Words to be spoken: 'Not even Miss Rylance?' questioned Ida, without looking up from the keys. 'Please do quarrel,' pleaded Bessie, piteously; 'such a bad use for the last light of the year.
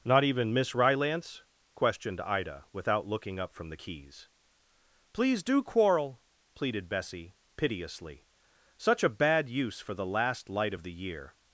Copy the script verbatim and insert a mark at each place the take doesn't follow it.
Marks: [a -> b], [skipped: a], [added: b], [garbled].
'Not even Miss Rylance?' questioned Ida, without looking up from the keys. 'Please do quarrel,' pleaded Bessie, piteously; 'such a bad use for the last light of the year.